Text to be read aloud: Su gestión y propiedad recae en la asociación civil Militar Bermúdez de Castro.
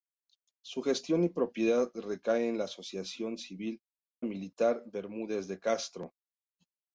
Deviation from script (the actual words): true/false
false